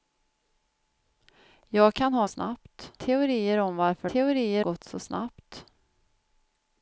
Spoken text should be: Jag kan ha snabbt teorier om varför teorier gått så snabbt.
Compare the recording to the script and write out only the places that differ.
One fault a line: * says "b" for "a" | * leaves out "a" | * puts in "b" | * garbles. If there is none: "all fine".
all fine